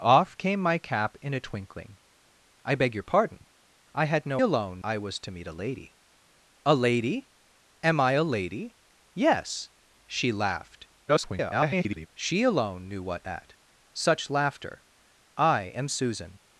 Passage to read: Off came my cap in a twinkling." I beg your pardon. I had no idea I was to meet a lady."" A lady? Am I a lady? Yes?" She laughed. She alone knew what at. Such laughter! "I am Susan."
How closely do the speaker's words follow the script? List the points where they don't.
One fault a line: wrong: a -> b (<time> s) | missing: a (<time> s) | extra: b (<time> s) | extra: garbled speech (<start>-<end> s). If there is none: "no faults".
wrong: idea -> alone (4.4 s)
extra: garbled speech (11.1-12.1 s)